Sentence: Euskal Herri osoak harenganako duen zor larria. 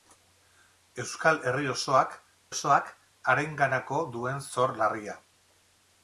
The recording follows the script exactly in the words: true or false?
false